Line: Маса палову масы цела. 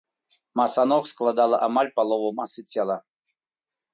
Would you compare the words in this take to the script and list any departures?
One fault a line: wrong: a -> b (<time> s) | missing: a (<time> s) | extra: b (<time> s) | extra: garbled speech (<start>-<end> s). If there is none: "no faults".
extra: ног складала амаль (0.9 s)